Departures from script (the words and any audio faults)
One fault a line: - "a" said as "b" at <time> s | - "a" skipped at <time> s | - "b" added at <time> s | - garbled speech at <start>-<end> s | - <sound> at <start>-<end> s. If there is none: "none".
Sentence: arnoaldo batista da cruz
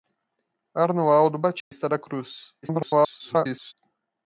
- dropout at 1.6-1.7 s
- garbled speech at 2.6-3.7 s